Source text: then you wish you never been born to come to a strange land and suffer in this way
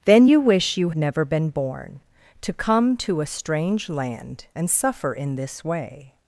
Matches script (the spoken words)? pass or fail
pass